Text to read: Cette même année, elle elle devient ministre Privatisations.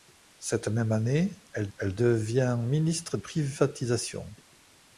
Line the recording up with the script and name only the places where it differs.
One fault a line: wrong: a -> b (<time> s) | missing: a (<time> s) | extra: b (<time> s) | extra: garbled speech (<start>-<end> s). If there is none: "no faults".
no faults